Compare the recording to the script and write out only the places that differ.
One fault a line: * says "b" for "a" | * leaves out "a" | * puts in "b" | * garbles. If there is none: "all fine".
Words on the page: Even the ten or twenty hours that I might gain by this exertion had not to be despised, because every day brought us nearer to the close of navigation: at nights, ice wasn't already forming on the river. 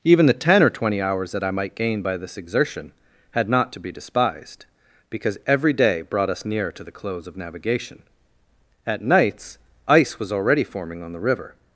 * says "was" for "wasn't"